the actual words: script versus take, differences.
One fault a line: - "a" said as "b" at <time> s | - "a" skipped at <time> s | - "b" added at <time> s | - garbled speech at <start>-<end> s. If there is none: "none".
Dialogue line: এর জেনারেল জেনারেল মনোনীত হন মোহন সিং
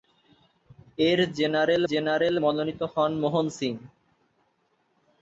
none